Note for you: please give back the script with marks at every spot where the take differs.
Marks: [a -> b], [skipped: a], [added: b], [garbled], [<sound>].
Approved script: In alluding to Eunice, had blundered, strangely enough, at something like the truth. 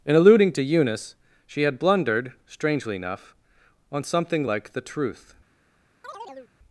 In alluding to Eunice, [added: she] had blundered, strangely enough, [at -> on] something like the truth. [chirp]